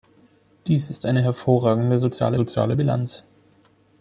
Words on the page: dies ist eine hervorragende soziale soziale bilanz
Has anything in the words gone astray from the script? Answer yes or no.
no